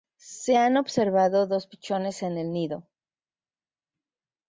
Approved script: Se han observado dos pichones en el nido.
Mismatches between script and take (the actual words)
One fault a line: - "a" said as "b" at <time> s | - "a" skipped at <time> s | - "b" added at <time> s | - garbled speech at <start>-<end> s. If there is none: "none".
none